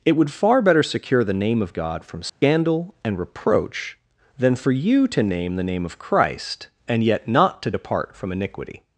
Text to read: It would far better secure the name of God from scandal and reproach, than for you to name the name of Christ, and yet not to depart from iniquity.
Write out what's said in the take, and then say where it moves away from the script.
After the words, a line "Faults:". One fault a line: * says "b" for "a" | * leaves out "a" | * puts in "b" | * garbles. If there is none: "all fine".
It would far better secure the name of God from scandal and reproach, than for you to name the name of Christ, and yet not to depart from iniquity.
Faults:
all fine